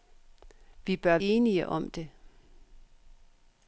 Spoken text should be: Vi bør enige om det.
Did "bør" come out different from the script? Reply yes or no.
no